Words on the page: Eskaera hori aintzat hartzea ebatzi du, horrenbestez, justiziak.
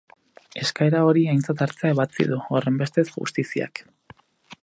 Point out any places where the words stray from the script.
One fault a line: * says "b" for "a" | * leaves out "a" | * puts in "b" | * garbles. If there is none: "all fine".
all fine